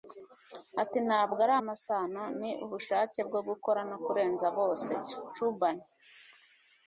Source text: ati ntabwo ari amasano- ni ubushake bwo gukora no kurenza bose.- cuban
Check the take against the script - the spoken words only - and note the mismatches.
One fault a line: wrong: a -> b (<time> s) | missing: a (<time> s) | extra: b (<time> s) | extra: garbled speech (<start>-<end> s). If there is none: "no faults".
no faults